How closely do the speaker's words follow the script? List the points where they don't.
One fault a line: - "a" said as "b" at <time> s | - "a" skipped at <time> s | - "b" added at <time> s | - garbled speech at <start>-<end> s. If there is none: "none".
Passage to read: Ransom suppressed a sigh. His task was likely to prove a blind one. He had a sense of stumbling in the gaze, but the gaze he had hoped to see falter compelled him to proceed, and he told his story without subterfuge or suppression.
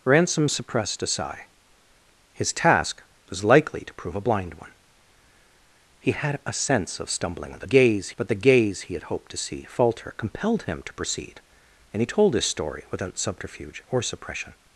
none